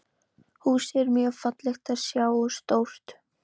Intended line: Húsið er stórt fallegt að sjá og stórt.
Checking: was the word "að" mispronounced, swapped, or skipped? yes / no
no